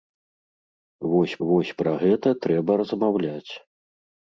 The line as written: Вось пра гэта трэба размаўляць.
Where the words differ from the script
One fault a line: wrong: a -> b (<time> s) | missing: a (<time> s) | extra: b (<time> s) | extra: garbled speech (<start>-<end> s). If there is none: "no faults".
extra: вось (1.5 s)